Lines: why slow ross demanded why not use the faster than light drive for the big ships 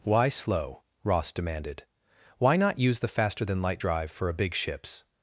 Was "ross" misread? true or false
false